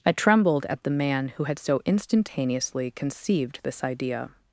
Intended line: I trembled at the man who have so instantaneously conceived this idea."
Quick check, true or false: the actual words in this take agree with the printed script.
false